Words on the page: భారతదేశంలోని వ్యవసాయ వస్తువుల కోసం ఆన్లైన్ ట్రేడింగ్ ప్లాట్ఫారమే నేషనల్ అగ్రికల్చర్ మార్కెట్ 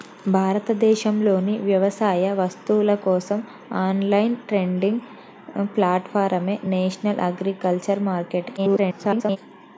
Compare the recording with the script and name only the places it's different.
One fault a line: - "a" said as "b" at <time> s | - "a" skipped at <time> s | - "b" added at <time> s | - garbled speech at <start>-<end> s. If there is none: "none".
- garbled speech at 8.6-9.4 s